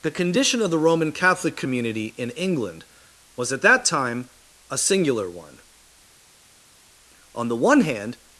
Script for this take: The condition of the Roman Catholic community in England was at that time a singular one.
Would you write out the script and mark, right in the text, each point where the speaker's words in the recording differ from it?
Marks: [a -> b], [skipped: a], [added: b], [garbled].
The condition of the Roman Catholic community in England was at that time a singular one. [added: On the one hand]